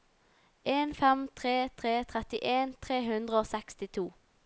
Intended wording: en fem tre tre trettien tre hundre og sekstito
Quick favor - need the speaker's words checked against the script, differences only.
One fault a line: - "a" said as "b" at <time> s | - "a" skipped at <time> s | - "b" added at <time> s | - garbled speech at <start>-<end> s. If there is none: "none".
none